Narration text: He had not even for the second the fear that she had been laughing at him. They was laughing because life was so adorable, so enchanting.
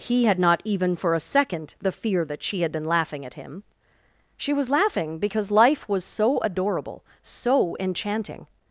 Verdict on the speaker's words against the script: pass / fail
fail